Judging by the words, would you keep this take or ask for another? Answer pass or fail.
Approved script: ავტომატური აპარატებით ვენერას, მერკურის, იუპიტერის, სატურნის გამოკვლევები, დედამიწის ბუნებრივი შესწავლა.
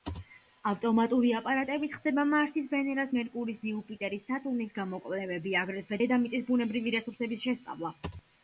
fail